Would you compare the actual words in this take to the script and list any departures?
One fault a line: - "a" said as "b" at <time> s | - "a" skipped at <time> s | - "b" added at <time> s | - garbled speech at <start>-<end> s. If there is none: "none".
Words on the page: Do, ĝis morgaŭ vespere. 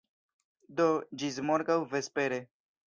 none